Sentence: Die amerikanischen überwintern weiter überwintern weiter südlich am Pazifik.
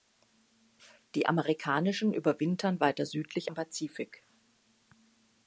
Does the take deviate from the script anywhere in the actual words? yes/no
yes